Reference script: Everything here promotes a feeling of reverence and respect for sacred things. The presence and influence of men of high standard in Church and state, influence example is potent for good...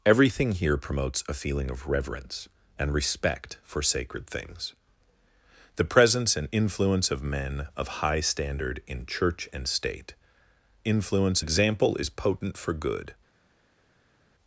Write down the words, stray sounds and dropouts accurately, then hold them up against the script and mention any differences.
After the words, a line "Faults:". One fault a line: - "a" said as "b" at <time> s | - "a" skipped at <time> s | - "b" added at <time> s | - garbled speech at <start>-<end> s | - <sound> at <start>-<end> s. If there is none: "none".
Everything here promotes a feeling of reverence and respect for sacred things. The presence and influence of men of high standard in Church and state, influence example is potent for good...
Faults:
none